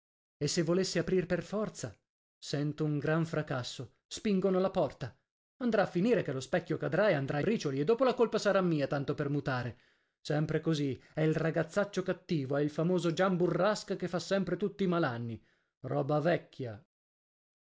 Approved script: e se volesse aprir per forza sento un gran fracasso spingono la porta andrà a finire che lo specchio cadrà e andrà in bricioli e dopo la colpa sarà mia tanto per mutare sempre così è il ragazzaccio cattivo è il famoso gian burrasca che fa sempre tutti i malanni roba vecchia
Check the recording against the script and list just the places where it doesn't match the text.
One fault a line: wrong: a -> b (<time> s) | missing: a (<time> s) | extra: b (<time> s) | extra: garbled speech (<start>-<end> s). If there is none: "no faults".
missing: in (7.4 s)